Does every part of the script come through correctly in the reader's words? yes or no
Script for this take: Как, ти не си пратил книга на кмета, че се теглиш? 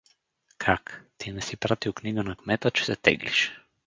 yes